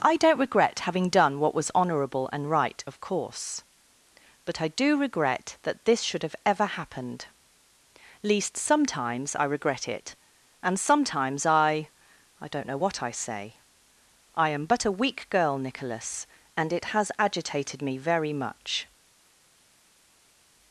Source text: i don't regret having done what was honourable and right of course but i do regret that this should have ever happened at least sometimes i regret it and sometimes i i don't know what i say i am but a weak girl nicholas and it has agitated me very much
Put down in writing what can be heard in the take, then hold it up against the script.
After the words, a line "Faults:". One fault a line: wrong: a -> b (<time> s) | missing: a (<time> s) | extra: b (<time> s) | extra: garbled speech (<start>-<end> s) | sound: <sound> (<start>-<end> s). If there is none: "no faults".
i don't regret having done what was honourable and right of course but i do regret that this should have ever happened least sometimes i regret it and sometimes i i don't know what i say i am but a weak girl nicholas and it has agitated me very much
Faults:
missing: at (7.3 s)